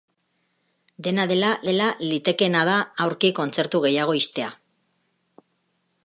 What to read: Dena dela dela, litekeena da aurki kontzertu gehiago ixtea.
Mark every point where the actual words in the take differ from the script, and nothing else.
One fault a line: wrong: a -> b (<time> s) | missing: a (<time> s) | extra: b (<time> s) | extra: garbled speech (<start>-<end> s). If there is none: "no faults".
no faults